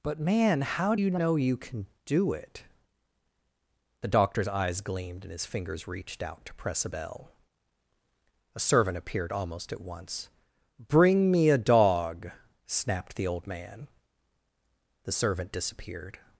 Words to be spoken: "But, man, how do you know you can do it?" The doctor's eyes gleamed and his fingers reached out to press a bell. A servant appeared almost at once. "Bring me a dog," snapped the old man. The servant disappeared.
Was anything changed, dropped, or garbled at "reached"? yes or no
no